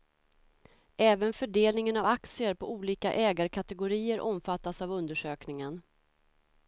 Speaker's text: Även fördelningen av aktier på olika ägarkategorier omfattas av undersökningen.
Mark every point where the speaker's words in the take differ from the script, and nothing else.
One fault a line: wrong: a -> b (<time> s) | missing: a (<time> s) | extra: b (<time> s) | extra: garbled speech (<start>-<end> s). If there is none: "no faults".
no faults